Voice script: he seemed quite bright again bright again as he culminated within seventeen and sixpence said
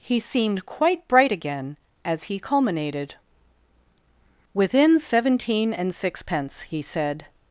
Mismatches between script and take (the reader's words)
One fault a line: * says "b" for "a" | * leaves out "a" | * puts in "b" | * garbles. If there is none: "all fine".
* leaves out "bright again"
* puts in "he"